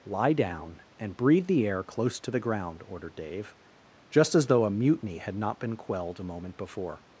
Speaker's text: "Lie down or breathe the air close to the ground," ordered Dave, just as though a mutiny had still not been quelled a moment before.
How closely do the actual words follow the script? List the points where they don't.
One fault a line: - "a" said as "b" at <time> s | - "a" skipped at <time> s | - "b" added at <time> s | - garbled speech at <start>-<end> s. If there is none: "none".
- "or" said as "and" at 1.0 s
- "still" skipped at 5.3 s